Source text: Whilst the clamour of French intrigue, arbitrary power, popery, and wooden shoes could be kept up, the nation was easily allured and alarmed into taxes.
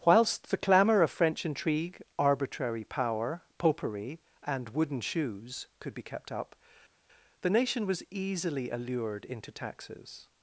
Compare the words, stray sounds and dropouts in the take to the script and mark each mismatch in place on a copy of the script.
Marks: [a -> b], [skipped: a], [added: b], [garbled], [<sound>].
Whilst the clamour of French intrigue, arbitrary power, popery, and wooden shoes could be kept up, the nation was easily allured [skipped: and alarmed] into taxes.